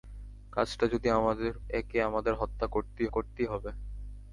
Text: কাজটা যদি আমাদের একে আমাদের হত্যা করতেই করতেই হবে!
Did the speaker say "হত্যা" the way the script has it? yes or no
yes